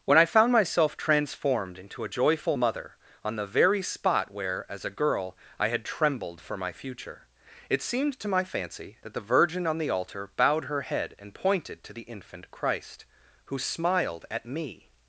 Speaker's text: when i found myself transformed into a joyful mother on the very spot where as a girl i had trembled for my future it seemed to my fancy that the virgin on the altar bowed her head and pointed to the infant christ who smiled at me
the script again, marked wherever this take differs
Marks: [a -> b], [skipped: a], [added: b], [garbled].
when i found myself transformed into a joyful mother on the very spot where as a girl i had trembled for my future it seemed to my fancy that the virgin on the altar bowed her head and pointed to the infant christ who smiled at me